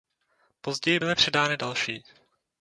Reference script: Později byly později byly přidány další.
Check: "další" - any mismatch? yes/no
no